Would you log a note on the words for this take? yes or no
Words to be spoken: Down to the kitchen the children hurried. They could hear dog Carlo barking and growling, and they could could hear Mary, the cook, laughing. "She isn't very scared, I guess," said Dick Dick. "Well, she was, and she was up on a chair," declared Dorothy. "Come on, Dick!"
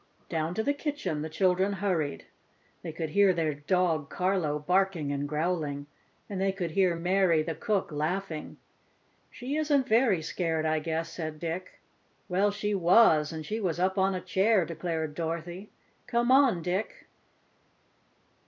yes